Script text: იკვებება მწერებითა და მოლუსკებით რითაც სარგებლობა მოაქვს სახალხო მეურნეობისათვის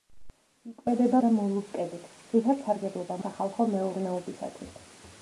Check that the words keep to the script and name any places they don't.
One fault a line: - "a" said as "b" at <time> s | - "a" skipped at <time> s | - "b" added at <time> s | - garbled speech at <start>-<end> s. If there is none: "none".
- "მწერებითა" skipped at 1.2 s
- "მოაქვს" skipped at 3.2 s